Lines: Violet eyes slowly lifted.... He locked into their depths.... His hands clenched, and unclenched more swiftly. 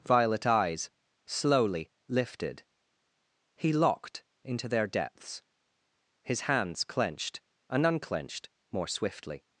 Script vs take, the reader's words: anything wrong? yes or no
no